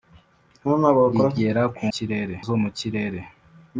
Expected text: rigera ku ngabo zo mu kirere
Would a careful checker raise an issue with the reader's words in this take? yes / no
yes